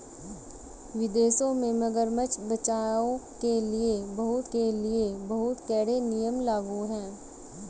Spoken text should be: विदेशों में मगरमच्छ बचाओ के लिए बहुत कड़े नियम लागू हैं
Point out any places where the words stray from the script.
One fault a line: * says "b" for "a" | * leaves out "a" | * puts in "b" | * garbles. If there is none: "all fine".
* puts in "के लिए बहुत"